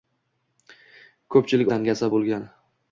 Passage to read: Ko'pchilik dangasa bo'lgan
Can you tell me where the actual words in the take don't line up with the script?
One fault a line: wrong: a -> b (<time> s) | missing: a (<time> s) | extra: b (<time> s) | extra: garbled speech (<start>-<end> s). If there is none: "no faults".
no faults